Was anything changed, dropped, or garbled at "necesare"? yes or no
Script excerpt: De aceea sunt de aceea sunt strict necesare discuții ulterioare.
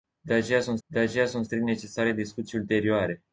no